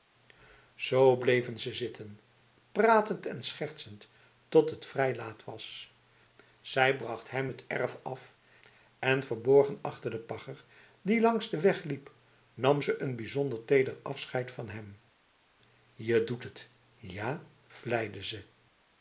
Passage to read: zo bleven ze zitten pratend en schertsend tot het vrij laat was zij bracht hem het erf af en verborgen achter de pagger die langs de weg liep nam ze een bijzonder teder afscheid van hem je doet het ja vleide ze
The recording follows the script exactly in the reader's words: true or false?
true